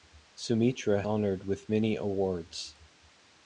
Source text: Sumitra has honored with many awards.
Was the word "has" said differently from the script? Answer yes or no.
yes